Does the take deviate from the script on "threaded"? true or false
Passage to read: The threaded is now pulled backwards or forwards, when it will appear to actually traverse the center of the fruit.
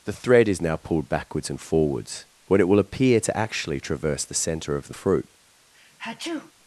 true